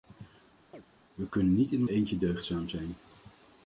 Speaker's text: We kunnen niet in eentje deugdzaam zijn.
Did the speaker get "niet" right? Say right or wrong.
right